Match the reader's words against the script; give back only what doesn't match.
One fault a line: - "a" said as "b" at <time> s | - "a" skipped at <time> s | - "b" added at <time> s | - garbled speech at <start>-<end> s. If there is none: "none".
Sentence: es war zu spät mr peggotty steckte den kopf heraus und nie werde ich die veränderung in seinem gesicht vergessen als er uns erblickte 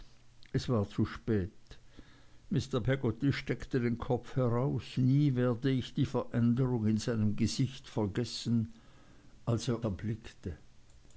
- "und" skipped at 5.0 s
- "uns" skipped at 9.8 s